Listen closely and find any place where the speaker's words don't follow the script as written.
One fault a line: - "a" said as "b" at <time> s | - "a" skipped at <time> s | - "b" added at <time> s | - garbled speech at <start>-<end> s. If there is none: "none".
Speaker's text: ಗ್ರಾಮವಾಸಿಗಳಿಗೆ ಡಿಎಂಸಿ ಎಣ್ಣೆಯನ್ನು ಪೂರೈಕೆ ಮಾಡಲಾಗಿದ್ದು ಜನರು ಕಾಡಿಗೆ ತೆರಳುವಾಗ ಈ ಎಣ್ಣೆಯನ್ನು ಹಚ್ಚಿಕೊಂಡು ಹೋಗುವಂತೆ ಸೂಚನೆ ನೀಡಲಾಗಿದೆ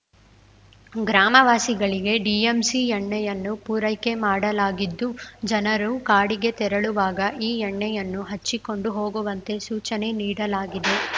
none